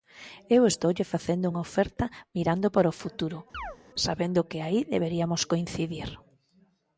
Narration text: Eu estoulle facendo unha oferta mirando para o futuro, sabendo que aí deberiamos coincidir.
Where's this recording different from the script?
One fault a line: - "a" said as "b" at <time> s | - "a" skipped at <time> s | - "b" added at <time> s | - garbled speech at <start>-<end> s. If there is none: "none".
none